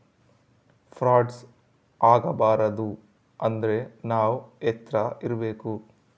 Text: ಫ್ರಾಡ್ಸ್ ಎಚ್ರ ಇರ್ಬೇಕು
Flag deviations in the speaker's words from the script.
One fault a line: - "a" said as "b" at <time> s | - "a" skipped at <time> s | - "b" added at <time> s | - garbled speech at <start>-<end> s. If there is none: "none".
- "ಆಗಬಾರದು ಅಂದ್ರೆ ನಾವ್" added at 2.0 s